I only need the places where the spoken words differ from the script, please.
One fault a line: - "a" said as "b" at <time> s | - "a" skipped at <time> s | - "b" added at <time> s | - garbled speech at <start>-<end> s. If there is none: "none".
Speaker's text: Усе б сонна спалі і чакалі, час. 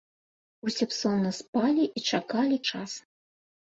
none